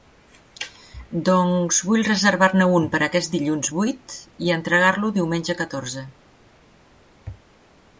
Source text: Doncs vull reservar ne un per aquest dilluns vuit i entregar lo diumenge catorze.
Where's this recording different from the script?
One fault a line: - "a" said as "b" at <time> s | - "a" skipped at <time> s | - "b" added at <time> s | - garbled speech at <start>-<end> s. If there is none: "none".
none